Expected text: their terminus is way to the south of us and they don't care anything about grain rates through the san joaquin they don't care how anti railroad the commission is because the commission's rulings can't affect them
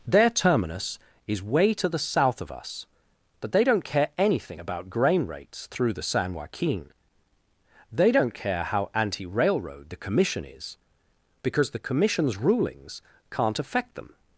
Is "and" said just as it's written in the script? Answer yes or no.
no